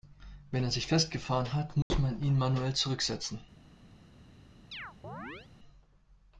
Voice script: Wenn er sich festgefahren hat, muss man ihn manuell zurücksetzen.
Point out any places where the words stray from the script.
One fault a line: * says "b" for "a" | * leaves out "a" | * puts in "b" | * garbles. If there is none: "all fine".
all fine